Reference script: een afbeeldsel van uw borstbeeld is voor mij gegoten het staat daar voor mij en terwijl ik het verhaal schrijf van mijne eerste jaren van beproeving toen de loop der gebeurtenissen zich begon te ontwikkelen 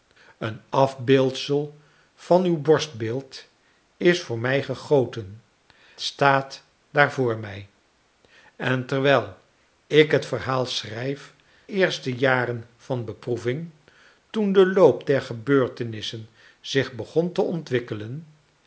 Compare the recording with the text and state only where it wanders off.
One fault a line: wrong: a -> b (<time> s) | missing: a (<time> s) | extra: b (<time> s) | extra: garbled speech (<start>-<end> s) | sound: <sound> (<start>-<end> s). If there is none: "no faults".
missing: het (5.4 s)
missing: van mijne (11.3 s)